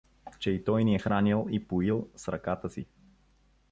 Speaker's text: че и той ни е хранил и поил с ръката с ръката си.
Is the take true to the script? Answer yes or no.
no